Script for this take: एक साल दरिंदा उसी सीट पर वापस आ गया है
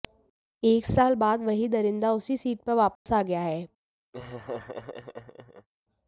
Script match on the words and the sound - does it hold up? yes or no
no